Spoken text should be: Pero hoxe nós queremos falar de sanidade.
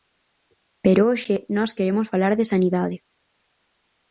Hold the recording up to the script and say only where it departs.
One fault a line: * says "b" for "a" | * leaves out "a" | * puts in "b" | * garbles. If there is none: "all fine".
all fine